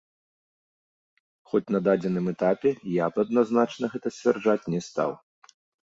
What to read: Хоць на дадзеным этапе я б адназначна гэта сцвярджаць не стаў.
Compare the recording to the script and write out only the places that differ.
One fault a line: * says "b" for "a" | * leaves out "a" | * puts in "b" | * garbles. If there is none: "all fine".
all fine